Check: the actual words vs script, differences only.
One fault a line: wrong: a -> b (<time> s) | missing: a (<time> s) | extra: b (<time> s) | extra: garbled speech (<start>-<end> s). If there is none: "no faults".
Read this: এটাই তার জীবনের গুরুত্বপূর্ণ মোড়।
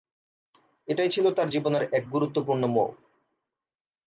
extra: ছিল (1.1 s)
extra: এক (1.9 s)